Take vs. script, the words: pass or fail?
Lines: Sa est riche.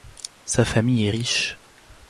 fail